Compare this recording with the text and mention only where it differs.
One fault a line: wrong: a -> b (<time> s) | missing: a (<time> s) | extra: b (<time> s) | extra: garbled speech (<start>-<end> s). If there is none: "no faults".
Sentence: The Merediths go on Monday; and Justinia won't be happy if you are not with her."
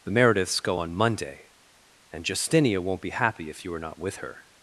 no faults